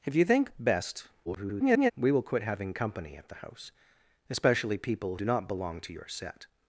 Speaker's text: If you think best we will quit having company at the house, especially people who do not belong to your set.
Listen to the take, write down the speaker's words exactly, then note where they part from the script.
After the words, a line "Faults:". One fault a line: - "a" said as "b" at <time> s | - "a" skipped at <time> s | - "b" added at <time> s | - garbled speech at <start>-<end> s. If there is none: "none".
If you think best [garbled] we will quit having company at the house, especially people do not belong to your set.
Faults:
- garbled speech at 1.2-1.9 s
- "who" skipped at 5.2 s